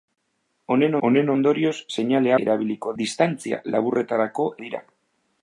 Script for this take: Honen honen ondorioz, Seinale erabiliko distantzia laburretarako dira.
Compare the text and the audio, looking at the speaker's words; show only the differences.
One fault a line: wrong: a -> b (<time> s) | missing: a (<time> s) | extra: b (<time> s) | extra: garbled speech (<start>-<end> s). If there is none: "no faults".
no faults